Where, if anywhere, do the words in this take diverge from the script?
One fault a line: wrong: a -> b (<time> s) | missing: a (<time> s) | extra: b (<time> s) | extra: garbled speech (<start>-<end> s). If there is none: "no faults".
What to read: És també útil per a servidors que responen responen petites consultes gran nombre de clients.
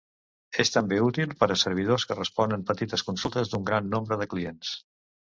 missing: responen (2.6 s)
extra: d'un (3.5 s)